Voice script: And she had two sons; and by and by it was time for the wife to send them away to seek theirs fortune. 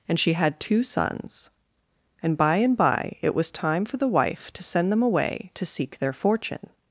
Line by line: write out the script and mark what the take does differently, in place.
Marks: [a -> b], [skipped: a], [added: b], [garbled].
And she had two sons; and by and by it was time for the wife to send them away to seek [theirs -> their] fortune.